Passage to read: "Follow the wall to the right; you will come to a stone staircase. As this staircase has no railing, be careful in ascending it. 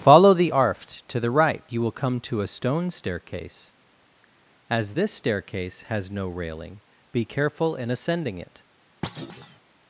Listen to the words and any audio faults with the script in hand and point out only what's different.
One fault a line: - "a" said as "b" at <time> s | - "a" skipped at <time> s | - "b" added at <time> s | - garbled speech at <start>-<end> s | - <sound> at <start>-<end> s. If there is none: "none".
- "wall" said as "arft" at 0.5 s
- thud at 9.0-9.6 s